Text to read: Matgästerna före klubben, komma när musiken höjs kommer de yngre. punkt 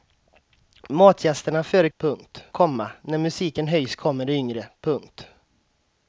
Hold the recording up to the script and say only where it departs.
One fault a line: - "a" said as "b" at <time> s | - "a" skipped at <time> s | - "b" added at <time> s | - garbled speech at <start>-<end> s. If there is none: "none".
- "klubben" said as "punkt" at 2.0 s